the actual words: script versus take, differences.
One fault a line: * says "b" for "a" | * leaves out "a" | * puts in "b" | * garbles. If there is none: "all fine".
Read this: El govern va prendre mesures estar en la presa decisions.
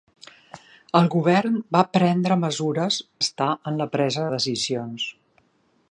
all fine